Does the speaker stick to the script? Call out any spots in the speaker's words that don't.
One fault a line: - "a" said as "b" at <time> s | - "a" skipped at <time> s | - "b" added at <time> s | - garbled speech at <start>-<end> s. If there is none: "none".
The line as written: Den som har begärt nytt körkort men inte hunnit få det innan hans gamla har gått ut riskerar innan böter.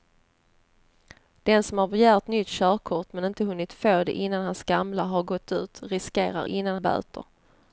none